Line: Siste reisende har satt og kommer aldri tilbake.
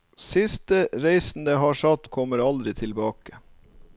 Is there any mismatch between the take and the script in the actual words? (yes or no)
no